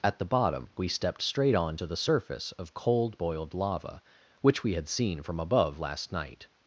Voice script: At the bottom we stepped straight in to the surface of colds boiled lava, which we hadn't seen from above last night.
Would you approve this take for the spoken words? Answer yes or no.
no